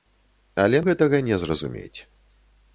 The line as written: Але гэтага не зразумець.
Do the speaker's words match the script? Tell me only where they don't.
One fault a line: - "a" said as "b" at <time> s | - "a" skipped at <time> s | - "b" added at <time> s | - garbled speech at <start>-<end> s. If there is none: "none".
none